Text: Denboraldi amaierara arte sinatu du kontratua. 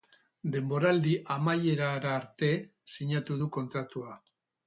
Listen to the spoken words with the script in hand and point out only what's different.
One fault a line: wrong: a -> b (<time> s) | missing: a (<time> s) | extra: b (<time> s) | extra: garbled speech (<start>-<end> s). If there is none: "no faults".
no faults